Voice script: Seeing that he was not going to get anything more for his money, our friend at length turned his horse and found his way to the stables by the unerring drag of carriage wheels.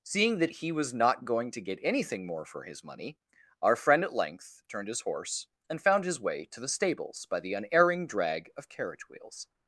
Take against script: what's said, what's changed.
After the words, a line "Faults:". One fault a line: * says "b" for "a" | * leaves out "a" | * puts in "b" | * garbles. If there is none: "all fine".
Seeing that he was not going to get anything more for his money, our friend at length turned his horse and found his way to the stables by the unerring drag of carriage wheels.
Faults:
all fine